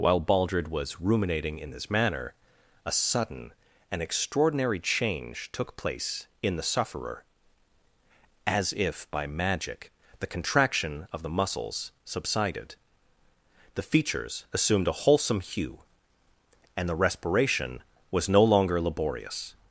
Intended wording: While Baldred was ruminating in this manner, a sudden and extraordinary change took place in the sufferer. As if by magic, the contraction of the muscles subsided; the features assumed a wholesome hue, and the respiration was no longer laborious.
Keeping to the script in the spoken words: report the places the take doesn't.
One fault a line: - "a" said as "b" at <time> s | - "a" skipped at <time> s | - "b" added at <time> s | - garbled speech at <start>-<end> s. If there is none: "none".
none